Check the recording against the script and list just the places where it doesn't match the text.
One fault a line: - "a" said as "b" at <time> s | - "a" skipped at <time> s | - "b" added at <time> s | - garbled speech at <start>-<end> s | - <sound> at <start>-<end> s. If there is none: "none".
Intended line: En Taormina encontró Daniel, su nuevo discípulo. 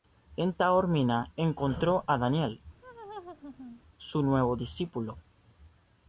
- "a" added at 2.1 s
- laugh at 2.8-3.8 s